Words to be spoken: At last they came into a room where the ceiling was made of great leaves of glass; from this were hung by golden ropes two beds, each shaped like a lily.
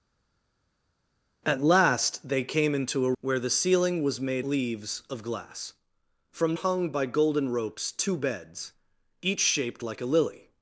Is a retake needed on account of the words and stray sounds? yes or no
yes